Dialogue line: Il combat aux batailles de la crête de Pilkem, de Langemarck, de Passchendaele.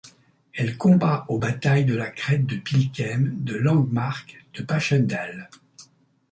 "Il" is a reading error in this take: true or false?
true